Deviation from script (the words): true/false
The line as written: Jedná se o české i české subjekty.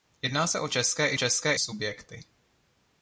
false